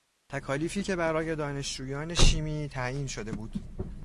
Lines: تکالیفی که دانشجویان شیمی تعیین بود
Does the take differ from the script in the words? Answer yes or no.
yes